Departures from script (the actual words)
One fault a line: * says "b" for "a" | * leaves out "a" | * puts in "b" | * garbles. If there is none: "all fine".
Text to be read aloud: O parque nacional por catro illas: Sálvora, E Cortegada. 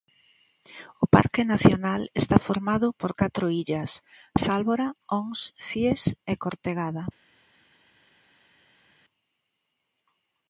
* puts in "está formado"
* puts in "Ons Cíes"